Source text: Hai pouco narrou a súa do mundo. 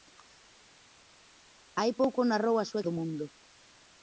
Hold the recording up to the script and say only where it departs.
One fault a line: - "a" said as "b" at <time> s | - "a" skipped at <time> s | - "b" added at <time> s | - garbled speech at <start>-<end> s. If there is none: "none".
none